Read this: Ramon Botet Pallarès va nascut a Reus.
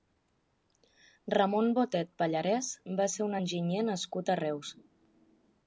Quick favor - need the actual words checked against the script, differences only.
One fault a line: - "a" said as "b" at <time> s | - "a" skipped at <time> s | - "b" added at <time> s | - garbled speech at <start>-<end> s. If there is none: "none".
- "ser un enginyer" added at 3.2 s